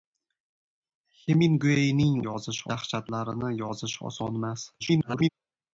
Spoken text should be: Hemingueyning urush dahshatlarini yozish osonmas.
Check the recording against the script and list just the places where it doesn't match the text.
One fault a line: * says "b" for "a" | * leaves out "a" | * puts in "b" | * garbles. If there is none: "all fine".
* says "yozish" for "urush"
* garbles